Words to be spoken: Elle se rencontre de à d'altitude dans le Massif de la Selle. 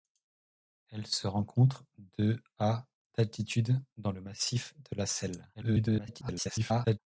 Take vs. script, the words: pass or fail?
fail